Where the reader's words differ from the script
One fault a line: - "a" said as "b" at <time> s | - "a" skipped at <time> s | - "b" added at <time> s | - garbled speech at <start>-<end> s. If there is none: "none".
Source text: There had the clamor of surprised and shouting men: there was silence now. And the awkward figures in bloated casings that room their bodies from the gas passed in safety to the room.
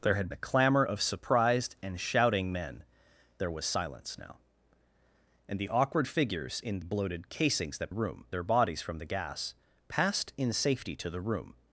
none